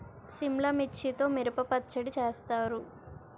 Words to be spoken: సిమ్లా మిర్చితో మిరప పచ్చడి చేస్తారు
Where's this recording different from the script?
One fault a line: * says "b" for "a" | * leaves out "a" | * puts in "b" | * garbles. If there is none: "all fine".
all fine